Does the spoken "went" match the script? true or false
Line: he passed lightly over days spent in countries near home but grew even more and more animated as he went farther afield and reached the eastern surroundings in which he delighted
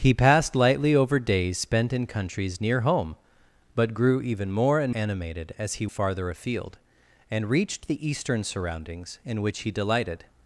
false